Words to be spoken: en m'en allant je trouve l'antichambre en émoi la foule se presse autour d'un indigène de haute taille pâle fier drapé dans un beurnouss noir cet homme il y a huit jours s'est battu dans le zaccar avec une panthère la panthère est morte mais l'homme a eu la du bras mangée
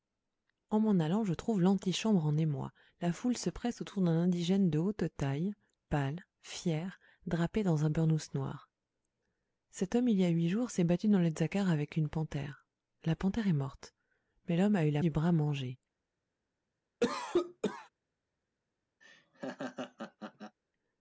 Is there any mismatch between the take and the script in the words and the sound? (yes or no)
yes